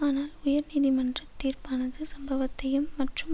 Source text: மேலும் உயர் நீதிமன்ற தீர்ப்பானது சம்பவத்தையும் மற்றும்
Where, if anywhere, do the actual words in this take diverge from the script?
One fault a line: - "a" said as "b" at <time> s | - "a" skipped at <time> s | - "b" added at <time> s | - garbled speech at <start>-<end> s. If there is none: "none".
- "மேலும்" said as "ஆனால்" at 0.0 s